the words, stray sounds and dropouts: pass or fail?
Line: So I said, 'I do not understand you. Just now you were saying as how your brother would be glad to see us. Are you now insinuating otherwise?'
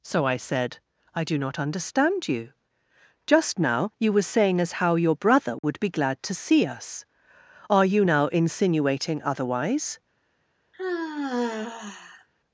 fail